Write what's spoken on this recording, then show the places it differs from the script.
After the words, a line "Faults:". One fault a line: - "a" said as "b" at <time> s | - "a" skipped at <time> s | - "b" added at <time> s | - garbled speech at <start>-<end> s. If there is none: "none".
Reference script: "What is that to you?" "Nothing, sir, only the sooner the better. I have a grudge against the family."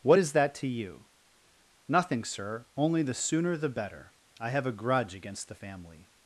"What is that to you?" "Nothing, sir, only the sooner the better. I have a grudge against the family."
Faults:
none